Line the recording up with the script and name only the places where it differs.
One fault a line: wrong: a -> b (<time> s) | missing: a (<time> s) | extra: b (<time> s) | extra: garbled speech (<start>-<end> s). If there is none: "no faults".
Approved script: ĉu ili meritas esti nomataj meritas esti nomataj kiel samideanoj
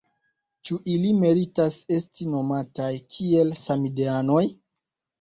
missing: meritas esti nomataj (2.9 s)